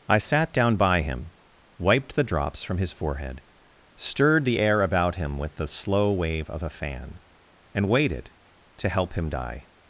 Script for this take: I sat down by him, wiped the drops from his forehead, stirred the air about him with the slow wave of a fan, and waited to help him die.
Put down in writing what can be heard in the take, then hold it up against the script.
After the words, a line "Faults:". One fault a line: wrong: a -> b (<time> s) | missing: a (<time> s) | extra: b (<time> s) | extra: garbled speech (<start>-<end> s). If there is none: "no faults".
I sat down by him, wiped the drops from his forehead, stirred the air about him with the slow wave of a fan, and waited to help him die.
Faults:
no faults